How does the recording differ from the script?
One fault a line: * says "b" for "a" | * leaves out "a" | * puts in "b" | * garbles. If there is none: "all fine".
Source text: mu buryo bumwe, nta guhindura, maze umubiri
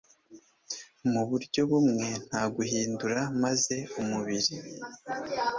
all fine